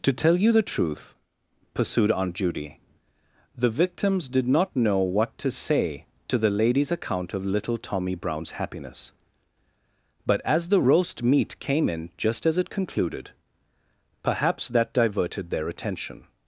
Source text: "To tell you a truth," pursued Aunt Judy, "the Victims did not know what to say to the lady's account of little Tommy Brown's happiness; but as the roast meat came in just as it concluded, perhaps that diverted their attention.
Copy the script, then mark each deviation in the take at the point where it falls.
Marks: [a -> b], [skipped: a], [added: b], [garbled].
"To tell you [a -> the] truth," pursued Aunt Judy, "the Victims did not know what to say to the lady's account of little Tommy Brown's happiness; but as the roast meat came in just as it concluded, perhaps that diverted their attention.